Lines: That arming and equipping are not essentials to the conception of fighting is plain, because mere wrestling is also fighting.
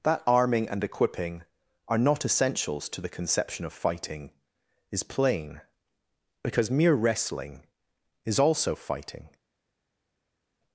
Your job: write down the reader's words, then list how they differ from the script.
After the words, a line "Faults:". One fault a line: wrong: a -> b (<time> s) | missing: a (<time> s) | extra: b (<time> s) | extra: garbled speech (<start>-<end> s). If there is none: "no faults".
That arming and equipping are not essentials to the conception of fighting is plain, because mere wrestling is also fighting.
Faults:
no faults